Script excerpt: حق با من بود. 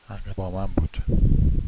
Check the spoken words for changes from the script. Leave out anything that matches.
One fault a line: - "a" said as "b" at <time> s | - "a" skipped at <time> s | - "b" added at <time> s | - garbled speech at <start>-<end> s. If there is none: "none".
none